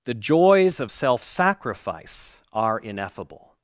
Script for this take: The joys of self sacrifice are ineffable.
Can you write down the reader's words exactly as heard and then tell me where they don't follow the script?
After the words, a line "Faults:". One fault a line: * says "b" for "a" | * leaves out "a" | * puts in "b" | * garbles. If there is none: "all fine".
The joys of self sacrifice are ineffable.
Faults:
all fine